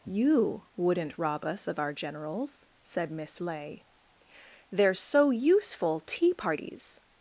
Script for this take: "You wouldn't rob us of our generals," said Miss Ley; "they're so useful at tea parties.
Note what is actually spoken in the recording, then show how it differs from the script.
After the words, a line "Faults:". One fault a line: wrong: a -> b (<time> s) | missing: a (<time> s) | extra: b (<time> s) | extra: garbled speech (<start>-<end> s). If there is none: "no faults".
"You wouldn't rob us of our generals," said Miss Ley; "they're so useful tea parties.
Faults:
missing: at (6.0 s)